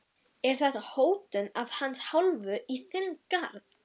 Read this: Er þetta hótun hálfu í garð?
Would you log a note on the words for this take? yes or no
yes